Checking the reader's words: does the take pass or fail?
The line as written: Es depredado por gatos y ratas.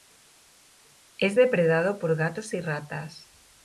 pass